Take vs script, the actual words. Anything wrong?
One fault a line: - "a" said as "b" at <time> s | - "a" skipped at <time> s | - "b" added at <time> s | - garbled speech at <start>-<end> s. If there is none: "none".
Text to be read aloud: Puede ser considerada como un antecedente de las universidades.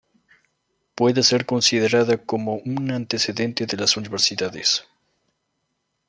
none